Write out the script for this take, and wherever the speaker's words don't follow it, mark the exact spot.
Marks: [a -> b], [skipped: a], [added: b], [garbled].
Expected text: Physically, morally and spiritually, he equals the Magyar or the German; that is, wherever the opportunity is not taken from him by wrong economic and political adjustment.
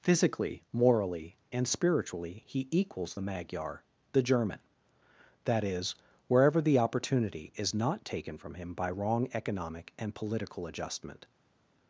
Physically, morally and spiritually, he equals the Magyar [skipped: or] the German; that is, wherever the opportunity is not taken from him by wrong economic and political adjustment.